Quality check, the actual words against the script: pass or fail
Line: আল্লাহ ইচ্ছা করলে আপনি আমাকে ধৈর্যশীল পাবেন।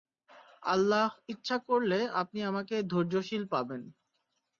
pass